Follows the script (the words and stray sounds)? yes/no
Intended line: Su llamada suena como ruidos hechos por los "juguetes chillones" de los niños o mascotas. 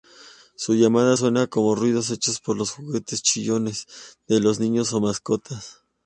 yes